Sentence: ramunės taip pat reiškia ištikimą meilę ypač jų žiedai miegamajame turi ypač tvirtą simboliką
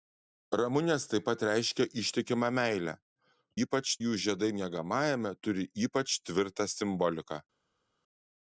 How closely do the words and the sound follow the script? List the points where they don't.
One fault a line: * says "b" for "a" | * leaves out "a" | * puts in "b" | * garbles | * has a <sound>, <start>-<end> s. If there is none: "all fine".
all fine